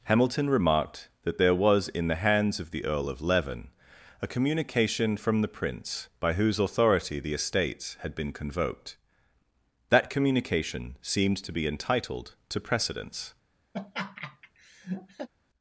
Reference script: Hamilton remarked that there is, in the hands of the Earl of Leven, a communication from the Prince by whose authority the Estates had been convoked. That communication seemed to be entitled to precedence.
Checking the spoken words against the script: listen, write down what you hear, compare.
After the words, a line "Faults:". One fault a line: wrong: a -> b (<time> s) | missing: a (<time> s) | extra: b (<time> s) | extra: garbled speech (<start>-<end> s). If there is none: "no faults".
Hamilton remarked that there was, in the hands of the Earl of Leven, a communication from the Prince by whose authority the Estates had been convoked. That communication seemed to be entitled to precedence.
Faults:
wrong: is -> was (1.5 s)